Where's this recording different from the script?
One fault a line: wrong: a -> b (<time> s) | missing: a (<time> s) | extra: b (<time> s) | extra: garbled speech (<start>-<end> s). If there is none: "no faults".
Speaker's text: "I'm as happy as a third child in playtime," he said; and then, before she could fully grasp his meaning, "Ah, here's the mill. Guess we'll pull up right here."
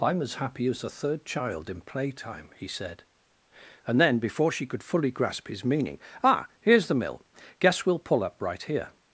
no faults